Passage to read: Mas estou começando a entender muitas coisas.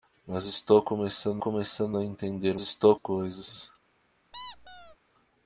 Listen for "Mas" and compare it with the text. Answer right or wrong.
right